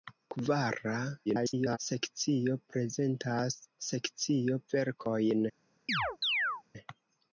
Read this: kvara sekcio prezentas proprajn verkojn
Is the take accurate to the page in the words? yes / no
no